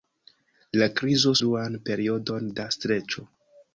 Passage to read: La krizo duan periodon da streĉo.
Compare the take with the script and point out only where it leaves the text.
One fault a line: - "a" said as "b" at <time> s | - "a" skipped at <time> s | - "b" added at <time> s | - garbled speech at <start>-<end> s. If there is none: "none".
none